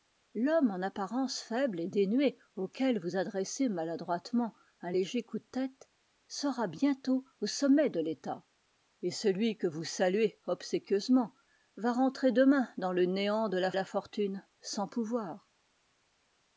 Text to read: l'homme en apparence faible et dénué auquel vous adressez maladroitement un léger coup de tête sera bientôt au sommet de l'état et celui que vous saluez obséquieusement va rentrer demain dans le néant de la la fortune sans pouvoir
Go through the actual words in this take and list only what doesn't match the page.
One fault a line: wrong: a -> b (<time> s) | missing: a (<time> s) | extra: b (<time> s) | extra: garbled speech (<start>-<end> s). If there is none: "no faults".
no faults